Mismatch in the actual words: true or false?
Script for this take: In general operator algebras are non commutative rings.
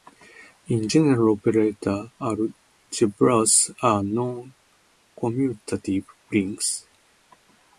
false